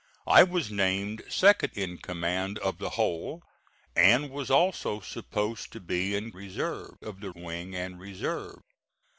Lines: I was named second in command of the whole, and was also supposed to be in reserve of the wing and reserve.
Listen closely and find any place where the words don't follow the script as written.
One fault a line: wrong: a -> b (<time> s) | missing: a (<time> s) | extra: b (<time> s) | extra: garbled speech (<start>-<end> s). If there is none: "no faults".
no faults